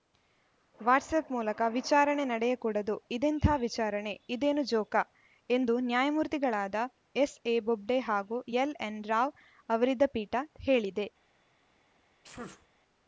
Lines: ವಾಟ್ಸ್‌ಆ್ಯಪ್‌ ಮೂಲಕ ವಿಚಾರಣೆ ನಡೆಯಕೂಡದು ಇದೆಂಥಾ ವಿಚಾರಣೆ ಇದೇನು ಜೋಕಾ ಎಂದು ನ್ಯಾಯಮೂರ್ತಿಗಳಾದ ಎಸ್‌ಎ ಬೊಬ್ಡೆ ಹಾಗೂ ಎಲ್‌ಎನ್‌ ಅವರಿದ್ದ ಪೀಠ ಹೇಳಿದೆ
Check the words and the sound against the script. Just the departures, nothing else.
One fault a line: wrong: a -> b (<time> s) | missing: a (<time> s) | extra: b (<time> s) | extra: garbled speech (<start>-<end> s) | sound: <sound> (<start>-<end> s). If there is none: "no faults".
extra: ರಾವ್ (9.0 s)
sound: sneeze (12.2-12.7 s)